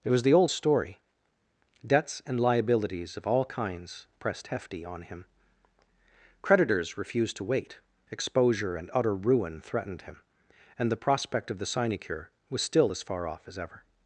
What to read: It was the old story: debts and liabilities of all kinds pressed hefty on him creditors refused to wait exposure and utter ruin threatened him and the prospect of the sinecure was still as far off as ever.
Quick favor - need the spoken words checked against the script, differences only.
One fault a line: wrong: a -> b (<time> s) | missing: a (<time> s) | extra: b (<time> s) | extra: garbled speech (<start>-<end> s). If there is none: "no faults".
no faults